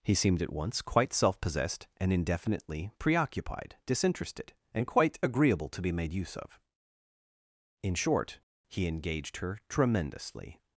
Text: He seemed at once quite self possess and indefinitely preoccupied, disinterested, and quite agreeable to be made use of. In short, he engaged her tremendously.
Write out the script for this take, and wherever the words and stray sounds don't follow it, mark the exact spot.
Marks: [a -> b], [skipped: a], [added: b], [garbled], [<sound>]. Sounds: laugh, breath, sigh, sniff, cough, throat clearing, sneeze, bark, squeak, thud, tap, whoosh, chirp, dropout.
He seemed at once quite self [possess -> possessed] and indefinitely preoccupied, disinterested, and quite agreeable to be made use of. In short, he engaged her tremendously.